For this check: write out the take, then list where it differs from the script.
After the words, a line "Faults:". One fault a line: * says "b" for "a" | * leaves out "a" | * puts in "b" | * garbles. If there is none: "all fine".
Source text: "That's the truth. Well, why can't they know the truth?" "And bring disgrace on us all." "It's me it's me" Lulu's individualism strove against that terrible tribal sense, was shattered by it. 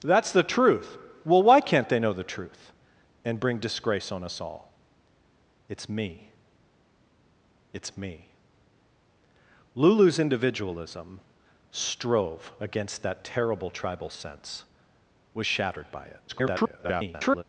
"That's the truth. Well, why can't they know the truth?" "And bring disgrace on us all." "It's me it's me" Lulu's individualism strove against that terrible tribal sense, was shattered by it. [garbled]
Faults:
* garbles